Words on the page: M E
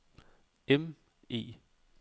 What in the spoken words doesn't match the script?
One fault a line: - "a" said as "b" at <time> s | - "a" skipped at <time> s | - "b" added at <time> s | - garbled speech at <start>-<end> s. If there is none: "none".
none